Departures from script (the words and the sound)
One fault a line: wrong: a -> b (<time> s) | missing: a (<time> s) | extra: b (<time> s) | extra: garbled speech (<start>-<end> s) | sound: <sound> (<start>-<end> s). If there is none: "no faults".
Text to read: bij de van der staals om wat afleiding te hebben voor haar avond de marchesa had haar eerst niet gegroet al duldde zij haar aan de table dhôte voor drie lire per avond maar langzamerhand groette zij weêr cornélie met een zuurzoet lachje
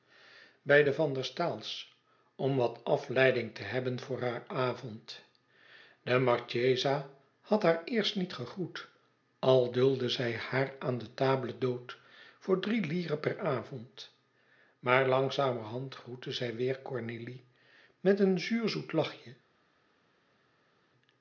no faults